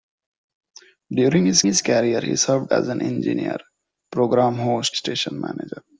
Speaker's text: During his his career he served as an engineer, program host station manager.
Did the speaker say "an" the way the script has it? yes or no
yes